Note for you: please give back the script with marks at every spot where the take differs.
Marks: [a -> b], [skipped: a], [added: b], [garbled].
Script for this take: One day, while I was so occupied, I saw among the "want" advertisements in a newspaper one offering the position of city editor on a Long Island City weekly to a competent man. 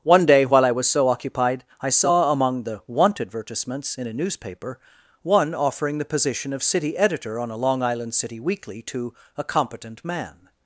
One day, while I was so occupied, I saw among the "want" advertisements in a newspaper one offering the position of city editor on a Long Island City weekly to a competent man.